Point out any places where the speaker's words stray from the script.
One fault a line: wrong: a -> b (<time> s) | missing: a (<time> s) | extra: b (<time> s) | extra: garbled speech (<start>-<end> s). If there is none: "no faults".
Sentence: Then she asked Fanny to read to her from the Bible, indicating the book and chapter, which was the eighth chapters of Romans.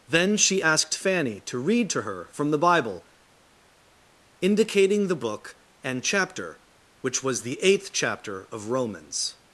wrong: chapters -> chapter (7.9 s)